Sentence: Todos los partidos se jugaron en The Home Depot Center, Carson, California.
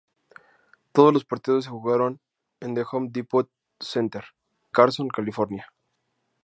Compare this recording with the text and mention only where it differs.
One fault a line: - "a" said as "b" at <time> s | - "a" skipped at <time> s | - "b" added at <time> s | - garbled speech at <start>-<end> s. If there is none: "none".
none